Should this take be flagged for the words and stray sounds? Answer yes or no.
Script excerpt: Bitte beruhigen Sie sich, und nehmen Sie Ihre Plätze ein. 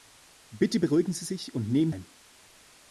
yes